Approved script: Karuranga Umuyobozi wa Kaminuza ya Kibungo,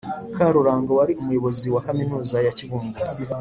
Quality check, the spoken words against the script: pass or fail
fail